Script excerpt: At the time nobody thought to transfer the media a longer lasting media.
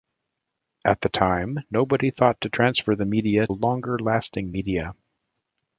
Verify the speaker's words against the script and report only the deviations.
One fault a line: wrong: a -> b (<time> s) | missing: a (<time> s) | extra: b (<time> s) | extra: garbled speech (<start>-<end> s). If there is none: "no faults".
no faults